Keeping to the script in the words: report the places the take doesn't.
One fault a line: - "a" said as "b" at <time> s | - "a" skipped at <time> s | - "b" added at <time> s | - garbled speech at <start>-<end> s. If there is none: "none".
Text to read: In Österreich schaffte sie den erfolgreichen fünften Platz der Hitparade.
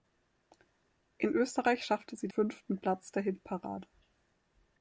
- "den erfolgreichen" skipped at 2.3 s